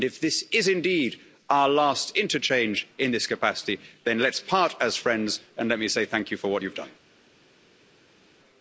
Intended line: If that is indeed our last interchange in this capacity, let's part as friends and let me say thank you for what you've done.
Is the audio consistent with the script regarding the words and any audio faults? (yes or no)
no